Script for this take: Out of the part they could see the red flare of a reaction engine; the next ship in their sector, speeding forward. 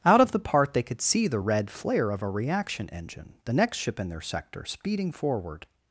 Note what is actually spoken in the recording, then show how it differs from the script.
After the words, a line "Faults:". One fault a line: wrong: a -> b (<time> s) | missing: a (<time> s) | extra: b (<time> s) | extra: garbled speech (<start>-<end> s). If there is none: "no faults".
Out of the part they could see the red flare of a reaction engine; the next ship in their sector, speeding forward.
Faults:
no faults